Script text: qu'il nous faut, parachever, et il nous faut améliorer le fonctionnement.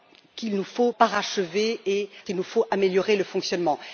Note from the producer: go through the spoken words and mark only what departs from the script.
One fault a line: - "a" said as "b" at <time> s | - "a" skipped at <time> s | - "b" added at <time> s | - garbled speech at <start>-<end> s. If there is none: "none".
none